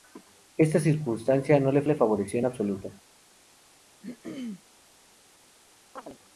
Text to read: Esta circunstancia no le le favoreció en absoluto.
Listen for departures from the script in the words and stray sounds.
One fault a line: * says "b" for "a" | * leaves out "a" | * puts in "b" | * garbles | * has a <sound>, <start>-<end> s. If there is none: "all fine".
* has a throat clearing, 4.0-4.6 s
* has a chirp, 6.0-6.2 s